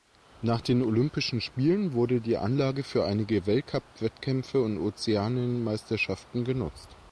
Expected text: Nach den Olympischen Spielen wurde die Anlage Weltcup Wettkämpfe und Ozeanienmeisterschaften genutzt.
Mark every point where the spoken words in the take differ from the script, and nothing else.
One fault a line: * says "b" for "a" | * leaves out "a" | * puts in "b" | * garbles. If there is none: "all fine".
* puts in "für einige"